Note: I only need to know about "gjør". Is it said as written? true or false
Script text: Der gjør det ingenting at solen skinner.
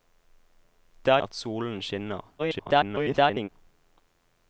false